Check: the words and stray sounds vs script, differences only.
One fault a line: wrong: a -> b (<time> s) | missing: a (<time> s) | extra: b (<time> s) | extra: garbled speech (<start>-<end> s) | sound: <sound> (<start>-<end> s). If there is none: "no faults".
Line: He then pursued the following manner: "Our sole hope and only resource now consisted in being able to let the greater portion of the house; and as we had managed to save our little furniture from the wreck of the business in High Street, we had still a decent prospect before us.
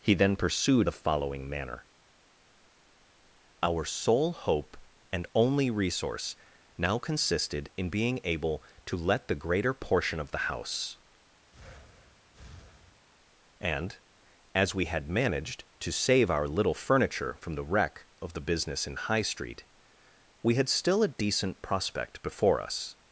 sound: breath (11.5-13.1 s)